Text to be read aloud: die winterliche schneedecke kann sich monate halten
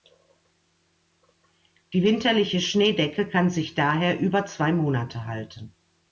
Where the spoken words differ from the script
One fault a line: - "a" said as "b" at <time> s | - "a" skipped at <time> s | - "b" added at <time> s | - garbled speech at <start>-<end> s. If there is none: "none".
- "daher über zwei" added at 3.8 s